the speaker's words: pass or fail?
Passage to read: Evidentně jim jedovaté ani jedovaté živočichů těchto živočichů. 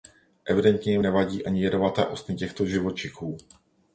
fail